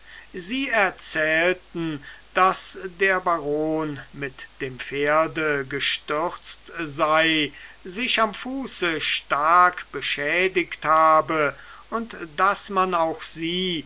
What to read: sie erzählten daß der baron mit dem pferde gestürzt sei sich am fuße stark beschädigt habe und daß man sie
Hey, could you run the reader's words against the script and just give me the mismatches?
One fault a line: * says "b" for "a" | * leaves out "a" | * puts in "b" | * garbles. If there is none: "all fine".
* puts in "auch"